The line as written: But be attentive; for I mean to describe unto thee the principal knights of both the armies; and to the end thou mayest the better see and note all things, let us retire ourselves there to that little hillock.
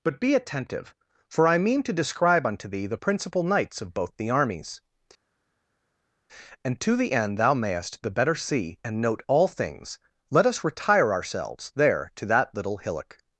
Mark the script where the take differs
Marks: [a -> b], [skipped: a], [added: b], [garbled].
But be attentive; for I mean to describe unto thee the principal knights of both the armies; and to the end thou mayest the better see and note all things, let us retire ourselves there to that little hillock.